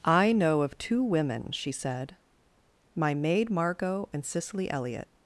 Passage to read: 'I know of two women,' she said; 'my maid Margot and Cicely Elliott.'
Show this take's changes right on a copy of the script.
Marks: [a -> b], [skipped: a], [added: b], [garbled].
'I know of two women,' she said; 'my maid Margot and Cicely Elliott.'